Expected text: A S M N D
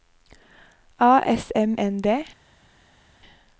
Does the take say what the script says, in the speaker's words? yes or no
yes